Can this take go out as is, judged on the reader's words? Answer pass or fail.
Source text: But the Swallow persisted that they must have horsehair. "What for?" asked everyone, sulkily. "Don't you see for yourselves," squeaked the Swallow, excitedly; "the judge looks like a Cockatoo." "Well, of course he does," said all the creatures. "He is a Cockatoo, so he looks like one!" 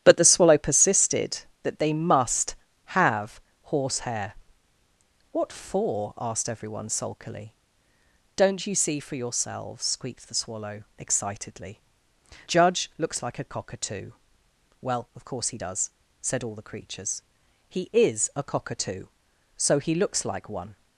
fail